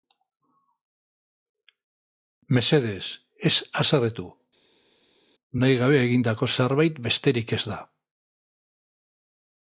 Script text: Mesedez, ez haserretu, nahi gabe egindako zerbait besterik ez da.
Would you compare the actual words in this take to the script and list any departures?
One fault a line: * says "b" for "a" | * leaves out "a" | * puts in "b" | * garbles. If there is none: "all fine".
all fine